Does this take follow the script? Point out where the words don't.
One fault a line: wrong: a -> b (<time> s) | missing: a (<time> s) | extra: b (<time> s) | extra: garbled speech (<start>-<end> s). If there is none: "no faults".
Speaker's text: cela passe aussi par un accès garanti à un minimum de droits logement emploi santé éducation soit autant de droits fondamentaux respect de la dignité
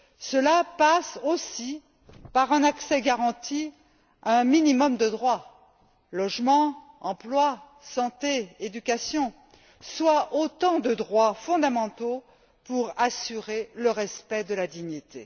extra: pour assurer le (12.7 s)